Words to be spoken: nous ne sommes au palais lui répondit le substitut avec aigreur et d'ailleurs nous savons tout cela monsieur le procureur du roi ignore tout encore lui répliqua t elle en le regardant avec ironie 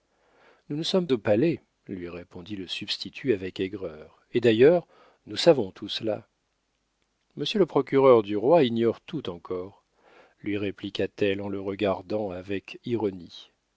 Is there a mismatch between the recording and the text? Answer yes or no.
no